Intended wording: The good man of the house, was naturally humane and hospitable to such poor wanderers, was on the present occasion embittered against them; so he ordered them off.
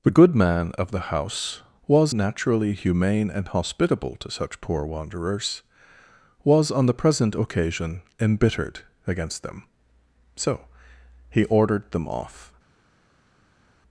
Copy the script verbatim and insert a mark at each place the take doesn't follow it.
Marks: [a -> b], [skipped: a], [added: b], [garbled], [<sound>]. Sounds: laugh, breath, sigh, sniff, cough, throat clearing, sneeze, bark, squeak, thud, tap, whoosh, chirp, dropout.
The good man of the house, was naturally humane and hospitable to such poor wanderers, was on the present occasion embittered against them; so he ordered them off.